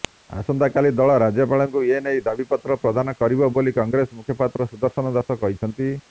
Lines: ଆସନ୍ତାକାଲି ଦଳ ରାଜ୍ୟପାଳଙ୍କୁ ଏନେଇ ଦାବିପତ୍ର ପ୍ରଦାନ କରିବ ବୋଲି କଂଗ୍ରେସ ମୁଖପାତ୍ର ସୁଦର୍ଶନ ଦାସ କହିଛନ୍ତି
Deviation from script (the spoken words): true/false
false